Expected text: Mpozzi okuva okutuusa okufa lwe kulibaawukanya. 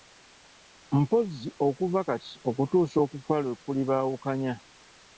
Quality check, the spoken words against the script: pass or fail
fail